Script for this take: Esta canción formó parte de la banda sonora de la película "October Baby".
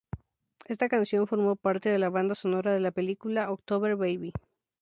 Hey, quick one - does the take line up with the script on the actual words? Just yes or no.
yes